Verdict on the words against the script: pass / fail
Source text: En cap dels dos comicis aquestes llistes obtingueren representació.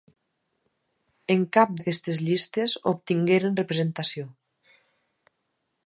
fail